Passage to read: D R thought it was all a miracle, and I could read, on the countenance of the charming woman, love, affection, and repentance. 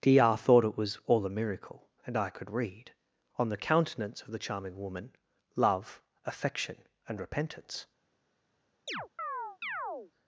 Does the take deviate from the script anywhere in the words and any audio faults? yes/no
yes